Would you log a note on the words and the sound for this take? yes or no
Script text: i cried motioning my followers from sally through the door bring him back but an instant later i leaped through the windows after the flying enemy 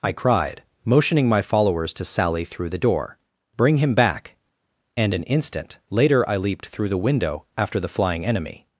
yes